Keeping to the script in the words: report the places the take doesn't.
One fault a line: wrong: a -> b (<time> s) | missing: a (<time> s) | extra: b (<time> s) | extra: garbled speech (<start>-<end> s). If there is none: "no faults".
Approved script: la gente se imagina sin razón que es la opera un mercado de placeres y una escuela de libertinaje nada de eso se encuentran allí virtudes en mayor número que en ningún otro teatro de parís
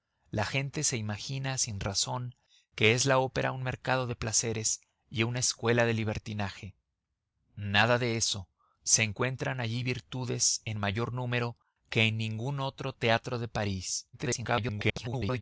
extra: garbled speech (14.1-15.4 s)